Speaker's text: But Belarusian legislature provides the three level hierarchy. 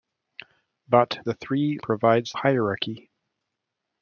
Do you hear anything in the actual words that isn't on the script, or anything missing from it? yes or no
yes